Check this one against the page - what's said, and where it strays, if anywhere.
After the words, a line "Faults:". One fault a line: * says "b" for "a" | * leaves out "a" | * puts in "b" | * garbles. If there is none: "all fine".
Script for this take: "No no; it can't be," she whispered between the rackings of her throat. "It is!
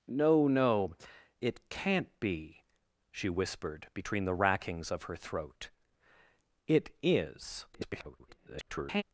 "No no; it can't be," she whispered between the rackings of her throat. "It is! [garbled]
Faults:
* garbles